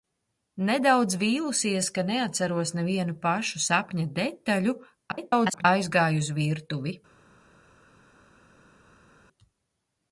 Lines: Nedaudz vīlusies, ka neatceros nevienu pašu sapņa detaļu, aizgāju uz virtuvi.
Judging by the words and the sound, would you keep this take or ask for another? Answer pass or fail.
fail